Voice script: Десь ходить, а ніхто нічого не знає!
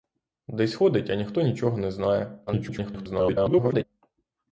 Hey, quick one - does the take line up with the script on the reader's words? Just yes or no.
no